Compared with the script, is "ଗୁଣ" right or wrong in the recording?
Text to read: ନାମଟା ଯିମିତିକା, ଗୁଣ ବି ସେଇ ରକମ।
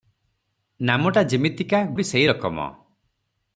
wrong